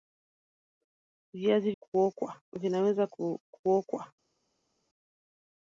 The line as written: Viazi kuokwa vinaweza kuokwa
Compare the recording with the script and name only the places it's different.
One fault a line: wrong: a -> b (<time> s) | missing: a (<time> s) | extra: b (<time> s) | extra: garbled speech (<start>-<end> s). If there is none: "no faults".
no faults